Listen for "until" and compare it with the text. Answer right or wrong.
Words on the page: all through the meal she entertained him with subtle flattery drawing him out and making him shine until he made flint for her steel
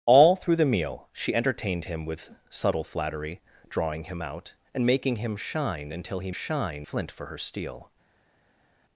right